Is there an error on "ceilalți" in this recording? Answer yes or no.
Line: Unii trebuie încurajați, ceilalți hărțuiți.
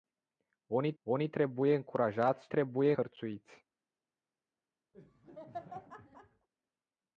yes